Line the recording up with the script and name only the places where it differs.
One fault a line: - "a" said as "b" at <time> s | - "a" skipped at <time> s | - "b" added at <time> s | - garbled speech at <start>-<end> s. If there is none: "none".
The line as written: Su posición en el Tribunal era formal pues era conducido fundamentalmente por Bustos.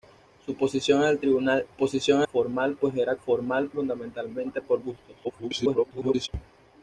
- "era" said as "posición" at 1.7 s
- "conducido" said as "formal" at 3.1 s
- garbled speech at 5.2-6.3 s